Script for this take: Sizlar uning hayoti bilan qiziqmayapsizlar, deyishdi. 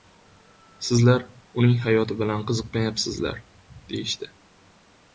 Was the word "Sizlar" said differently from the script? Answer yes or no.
no